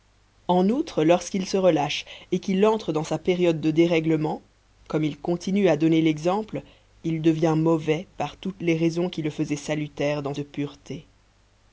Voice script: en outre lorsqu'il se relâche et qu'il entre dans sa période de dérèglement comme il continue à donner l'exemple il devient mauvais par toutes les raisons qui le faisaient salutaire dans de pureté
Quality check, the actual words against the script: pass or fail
pass